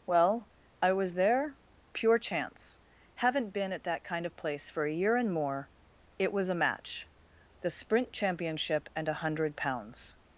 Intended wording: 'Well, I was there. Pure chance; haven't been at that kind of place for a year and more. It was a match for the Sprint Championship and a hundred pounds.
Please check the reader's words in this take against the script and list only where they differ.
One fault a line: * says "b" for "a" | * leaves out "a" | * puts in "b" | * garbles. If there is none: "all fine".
* leaves out "for"